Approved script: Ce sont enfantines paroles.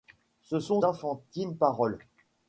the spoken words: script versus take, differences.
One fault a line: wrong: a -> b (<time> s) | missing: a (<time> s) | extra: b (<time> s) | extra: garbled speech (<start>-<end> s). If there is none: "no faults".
no faults